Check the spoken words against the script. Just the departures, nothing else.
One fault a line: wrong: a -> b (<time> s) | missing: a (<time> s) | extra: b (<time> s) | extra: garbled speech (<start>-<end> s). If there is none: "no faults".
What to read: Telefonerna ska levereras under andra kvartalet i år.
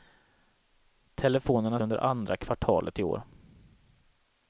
missing: ska levereras (1.8 s)